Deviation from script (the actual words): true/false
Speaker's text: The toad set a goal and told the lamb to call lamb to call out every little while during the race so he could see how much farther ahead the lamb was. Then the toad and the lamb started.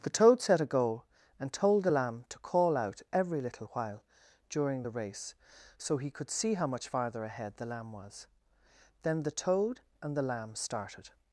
true